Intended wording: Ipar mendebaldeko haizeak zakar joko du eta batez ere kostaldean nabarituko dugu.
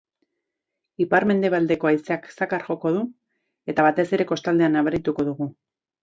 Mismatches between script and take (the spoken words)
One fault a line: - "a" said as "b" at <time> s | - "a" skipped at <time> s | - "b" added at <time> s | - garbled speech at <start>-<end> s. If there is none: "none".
none